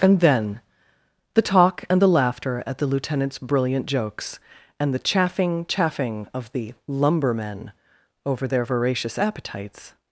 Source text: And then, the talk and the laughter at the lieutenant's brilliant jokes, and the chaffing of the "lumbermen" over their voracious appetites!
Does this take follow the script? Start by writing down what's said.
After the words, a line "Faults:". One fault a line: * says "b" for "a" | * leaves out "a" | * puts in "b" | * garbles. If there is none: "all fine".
And then, the talk and the laughter at the lieutenant's brilliant jokes, and the chaffing chaffing of the "lumbermen" over their voracious appetites!
Faults:
* puts in "chaffing"